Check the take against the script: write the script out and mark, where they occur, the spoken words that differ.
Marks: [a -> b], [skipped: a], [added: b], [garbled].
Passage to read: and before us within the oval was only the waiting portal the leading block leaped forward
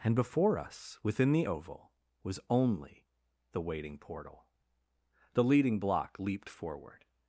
and before us within the oval was only the waiting portal the leading block leaped forward